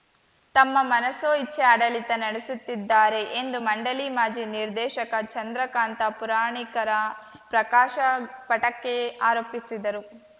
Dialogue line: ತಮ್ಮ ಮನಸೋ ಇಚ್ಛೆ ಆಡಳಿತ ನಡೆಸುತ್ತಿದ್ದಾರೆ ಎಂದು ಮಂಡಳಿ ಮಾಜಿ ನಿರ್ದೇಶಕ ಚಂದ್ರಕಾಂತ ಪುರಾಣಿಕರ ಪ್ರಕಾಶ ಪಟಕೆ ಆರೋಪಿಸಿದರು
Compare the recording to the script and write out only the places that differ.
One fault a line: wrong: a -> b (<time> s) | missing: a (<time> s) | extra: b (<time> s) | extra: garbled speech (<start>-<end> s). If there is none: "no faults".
no faults